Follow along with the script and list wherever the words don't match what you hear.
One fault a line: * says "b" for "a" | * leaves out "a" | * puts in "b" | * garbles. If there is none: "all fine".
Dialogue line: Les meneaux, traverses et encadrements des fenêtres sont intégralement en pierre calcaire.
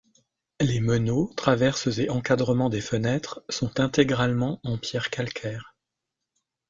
all fine